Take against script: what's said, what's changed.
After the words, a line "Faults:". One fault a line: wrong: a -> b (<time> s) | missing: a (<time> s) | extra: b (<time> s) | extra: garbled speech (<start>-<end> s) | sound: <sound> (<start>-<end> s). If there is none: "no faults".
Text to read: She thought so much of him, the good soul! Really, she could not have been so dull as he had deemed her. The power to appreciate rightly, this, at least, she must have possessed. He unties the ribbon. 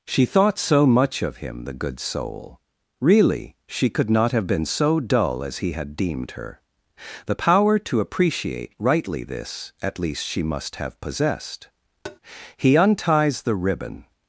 She thought so much of him, the good soul! Really, she could not have been so dull as he had deemed her. The power to appreciate rightly, this, at least, she must have possessed. He unties the ribbon.
Faults:
sound: tap (12.0-12.2 s)